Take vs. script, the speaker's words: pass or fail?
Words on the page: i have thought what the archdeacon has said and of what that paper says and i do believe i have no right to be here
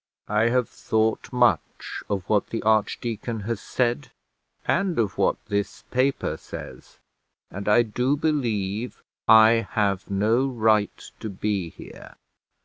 fail